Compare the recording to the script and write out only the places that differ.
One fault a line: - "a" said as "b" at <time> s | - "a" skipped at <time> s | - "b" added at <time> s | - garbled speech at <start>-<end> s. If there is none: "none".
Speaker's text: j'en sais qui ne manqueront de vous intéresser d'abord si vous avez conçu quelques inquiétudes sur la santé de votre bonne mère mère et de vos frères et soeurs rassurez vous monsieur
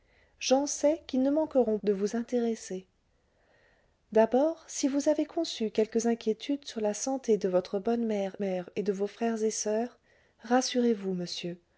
none